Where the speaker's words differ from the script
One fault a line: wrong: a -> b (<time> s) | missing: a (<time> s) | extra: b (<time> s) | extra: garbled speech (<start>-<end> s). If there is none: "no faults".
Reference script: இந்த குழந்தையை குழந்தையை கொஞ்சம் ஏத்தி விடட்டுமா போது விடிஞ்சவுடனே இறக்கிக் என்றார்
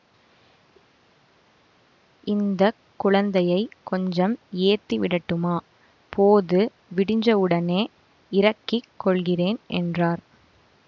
missing: குழந்தையை (3.6 s)
extra: கொள்கிறேன் (9.0 s)